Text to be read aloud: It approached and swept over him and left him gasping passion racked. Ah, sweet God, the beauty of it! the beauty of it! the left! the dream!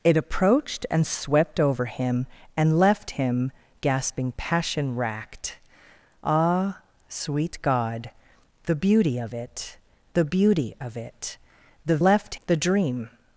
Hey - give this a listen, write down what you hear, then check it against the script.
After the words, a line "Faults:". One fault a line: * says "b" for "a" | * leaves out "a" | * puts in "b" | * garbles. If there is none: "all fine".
It approached and swept over him and left him gasping passion racked. Ah, sweet God, the beauty of it! the beauty of it! the left! the dream!
Faults:
all fine